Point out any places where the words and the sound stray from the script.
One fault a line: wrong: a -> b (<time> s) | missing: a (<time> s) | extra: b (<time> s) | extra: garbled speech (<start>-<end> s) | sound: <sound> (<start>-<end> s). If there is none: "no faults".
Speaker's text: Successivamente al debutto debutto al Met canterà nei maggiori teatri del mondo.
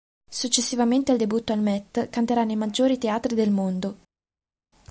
missing: debutto (1.5 s)